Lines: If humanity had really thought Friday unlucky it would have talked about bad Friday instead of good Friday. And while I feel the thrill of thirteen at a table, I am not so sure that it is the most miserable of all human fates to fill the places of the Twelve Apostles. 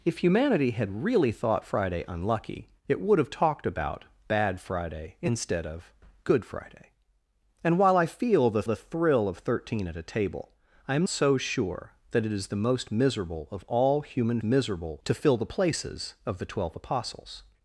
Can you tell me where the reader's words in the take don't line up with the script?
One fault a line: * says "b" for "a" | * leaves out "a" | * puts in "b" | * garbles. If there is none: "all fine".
* puts in "the"
* leaves out "not"
* says "miserable" for "fates"